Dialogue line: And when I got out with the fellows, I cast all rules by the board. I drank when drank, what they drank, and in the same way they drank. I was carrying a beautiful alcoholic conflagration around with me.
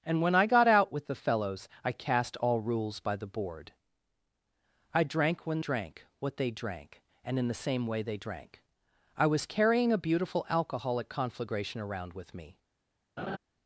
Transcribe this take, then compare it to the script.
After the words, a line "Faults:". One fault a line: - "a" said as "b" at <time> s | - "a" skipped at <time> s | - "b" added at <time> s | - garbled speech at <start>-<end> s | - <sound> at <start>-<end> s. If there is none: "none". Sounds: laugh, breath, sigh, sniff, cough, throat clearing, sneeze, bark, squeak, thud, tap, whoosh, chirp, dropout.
And when I got out with the fellows, I cast all rules by the board. I drank when drank, what they drank, and in the same way they drank. I was carrying a beautiful alcoholic conflagration around with me.
Faults:
- laugh at 13.2-13.4 s